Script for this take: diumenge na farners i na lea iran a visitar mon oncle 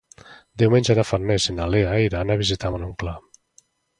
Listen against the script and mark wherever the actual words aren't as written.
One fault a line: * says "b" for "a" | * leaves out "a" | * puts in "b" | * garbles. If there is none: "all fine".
all fine